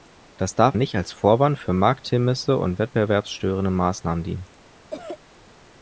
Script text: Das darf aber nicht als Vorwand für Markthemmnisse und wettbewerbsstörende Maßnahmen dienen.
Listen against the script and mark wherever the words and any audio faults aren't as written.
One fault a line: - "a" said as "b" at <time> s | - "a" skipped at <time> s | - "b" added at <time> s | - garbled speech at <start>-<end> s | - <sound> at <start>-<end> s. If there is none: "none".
- "aber" skipped at 0.8 s
- cough at 4.9-5.2 s